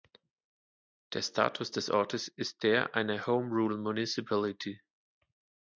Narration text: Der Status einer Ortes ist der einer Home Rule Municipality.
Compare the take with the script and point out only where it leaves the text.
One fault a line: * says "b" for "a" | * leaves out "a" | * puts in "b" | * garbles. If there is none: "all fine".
* says "des" for "einer"